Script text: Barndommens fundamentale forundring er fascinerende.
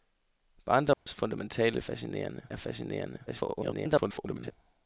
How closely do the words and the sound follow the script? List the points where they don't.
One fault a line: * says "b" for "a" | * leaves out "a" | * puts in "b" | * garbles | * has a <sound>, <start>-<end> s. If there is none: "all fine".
* has a dropout, 0.9-1.1 s
* says "fascinerende" for "forundring"
* garbles